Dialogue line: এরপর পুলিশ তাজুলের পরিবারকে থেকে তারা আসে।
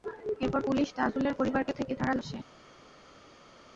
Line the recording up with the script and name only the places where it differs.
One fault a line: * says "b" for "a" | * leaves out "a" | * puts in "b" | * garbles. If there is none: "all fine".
all fine